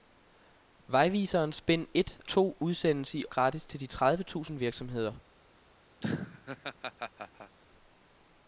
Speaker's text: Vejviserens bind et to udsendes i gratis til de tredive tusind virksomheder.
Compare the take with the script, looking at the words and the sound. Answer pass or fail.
fail